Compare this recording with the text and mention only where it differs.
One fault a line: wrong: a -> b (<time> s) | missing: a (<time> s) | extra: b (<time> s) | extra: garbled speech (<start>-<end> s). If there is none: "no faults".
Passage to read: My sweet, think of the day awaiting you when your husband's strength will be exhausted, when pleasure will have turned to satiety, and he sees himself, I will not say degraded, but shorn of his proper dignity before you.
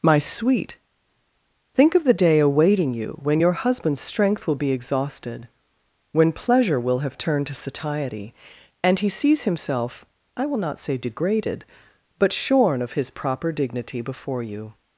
no faults